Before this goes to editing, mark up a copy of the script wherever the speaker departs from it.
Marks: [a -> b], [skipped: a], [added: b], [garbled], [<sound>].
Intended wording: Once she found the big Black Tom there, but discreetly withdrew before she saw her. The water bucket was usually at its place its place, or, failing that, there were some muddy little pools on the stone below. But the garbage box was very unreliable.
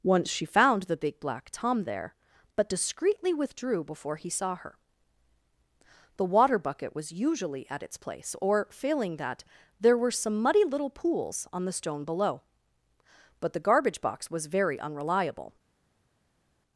Once she found the big Black Tom there, but discreetly withdrew before [she -> he] saw her. The water bucket was usually at its place [skipped: its place,] or, failing that, there were some muddy little pools on the stone below. But the garbage box was very unreliable.